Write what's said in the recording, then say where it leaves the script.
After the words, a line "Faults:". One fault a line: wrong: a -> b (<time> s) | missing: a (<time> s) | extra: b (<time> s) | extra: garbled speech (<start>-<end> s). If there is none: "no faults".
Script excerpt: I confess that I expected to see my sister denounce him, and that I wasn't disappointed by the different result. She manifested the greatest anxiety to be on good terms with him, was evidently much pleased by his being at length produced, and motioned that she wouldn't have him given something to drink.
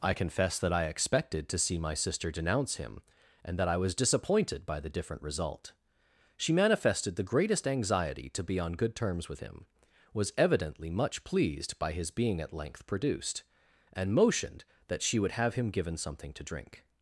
I confess that I expected to see my sister denounce him, and that I was disappointed by the different result. She manifested the greatest anxiety to be on good terms with him, was evidently much pleased by his being at length produced, and motioned that she would have him given something to drink.
Faults:
wrong: wasn't -> was (3.8 s)
wrong: wouldn't -> would (15.2 s)